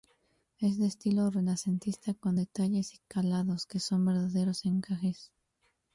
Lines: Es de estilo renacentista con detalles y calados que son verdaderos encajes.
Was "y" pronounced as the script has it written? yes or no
yes